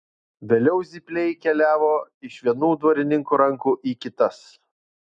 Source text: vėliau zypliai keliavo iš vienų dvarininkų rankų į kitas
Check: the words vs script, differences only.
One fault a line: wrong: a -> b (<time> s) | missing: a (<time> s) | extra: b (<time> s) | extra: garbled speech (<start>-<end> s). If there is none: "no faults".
no faults